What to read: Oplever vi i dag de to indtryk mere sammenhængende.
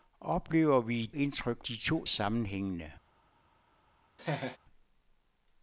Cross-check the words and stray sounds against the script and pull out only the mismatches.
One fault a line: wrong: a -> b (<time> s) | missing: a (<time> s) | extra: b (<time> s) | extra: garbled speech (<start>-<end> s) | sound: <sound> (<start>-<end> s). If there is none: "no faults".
wrong: dag -> indtryk (1.1 s)
missing: indtryk mere (2.1 s)
sound: laugh (4.2-4.6 s)